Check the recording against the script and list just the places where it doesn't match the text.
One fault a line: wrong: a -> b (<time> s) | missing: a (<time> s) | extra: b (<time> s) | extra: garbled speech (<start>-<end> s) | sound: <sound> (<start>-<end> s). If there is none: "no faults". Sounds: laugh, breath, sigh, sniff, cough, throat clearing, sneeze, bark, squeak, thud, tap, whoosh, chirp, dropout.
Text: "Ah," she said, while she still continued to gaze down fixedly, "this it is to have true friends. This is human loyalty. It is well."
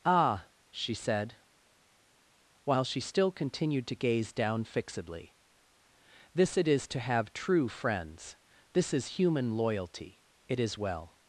no faults